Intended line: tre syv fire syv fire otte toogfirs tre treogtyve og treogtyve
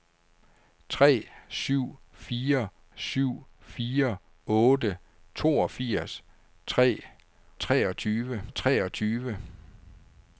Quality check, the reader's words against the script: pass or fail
pass